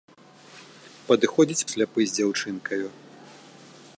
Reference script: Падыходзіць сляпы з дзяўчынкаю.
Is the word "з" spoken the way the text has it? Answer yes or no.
yes